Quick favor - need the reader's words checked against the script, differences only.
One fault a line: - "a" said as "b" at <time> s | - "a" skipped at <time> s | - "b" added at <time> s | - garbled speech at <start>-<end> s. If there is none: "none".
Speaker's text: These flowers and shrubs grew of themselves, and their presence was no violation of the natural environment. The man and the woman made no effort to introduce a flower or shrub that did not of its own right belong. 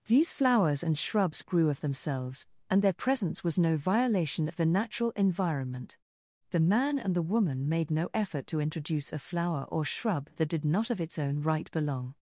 none